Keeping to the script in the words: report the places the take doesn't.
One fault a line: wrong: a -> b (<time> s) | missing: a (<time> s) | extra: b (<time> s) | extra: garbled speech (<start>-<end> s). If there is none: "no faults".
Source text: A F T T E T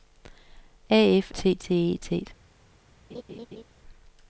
no faults